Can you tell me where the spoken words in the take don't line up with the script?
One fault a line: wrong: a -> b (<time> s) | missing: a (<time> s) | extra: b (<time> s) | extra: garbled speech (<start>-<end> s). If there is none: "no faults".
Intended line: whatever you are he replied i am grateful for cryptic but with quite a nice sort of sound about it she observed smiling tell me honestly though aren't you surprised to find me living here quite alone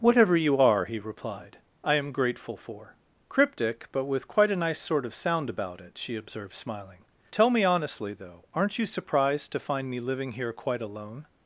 no faults